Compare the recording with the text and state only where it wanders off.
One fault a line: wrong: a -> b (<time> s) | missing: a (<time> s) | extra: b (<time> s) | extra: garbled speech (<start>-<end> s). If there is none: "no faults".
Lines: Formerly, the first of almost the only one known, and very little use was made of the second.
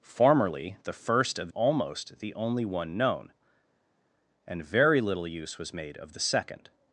no faults